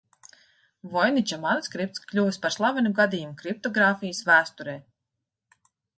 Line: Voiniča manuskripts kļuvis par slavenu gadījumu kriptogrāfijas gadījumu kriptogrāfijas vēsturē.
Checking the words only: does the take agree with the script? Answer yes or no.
no